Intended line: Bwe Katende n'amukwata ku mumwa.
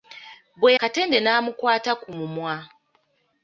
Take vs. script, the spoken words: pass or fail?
pass